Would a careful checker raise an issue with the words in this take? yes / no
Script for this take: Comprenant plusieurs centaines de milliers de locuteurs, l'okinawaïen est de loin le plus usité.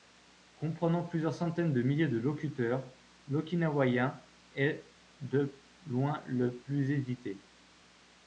no